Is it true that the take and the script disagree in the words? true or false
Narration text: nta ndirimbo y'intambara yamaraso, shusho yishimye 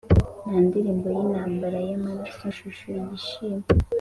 false